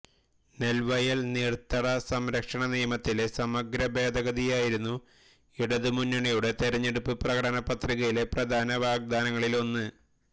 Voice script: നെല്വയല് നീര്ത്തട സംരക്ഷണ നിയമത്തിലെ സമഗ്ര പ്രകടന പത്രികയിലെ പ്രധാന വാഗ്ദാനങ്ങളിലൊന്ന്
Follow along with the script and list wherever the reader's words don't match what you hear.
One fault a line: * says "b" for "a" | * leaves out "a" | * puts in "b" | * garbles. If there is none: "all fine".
* puts in "ഭേദഗതിയായിരുന്നു ഇടതുമുന്നണിയുടെ തെരഞ്ഞെടുപ്പ്"